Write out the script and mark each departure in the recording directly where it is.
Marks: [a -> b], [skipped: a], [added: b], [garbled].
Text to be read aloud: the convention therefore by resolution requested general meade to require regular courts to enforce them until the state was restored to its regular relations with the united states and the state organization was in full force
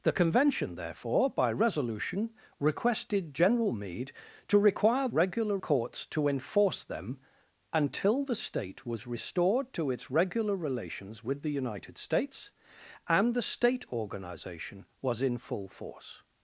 the convention therefore by resolution requested general meade to require regular courts to enforce them until the state was restored to its regular relations with the united states and the state organization was in full force